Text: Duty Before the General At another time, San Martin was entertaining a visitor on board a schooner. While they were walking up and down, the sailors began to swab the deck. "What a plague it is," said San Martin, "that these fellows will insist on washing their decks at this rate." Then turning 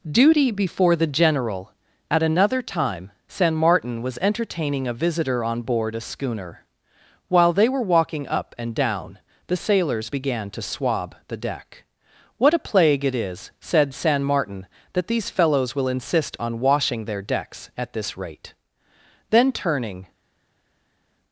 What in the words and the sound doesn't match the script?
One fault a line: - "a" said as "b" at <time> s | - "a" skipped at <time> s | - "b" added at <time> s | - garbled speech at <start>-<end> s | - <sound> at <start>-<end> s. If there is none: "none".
none